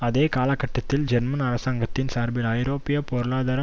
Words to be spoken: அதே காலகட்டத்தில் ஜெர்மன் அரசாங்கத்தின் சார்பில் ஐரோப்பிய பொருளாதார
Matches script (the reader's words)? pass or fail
pass